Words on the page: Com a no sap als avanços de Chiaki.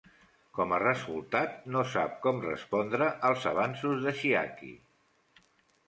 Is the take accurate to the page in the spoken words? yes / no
no